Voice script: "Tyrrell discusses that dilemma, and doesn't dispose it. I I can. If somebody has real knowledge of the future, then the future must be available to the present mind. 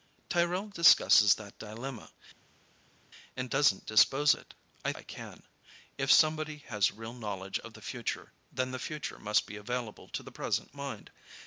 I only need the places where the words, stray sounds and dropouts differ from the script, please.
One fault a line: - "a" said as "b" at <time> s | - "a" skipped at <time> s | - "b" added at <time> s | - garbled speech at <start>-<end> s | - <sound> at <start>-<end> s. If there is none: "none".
none